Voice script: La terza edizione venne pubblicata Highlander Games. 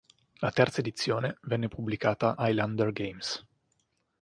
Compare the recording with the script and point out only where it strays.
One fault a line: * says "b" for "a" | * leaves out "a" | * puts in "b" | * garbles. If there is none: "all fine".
all fine